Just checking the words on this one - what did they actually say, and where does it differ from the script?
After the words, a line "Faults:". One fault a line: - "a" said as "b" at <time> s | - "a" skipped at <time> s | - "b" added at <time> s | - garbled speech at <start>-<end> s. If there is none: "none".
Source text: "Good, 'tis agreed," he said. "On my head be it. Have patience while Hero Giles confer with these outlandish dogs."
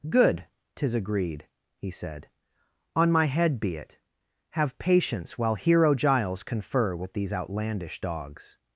"Good, 'tis agreed," he said. "On my head be it. Have patience while Hero Giles confer with these outlandish dogs."
Faults:
none